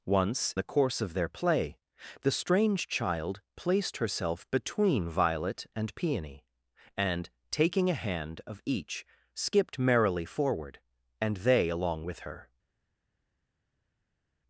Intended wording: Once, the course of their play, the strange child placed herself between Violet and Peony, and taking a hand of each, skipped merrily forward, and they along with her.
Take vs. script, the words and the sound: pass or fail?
pass